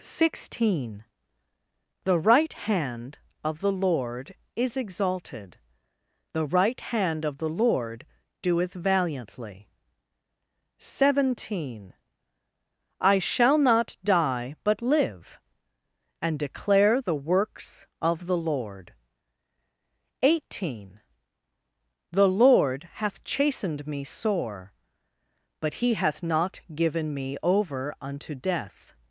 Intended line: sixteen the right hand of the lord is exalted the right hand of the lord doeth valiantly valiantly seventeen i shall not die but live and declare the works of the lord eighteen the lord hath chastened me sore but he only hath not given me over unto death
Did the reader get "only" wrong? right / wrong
wrong